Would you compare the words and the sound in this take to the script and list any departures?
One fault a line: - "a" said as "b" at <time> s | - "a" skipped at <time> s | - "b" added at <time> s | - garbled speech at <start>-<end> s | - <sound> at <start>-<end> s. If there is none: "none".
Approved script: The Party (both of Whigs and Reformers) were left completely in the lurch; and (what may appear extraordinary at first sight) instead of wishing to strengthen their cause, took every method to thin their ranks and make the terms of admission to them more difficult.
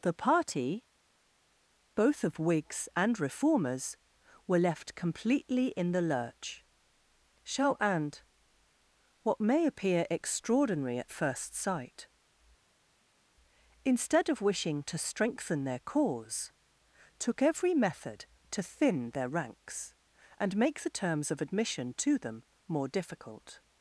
- "shall" added at 7.4 s